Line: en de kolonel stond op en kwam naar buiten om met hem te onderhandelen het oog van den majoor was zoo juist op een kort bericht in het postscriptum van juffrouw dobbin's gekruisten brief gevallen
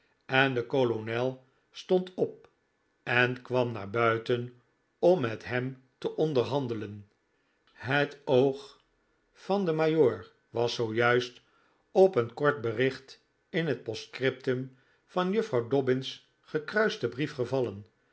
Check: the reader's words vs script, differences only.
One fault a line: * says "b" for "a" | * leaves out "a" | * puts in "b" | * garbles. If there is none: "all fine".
all fine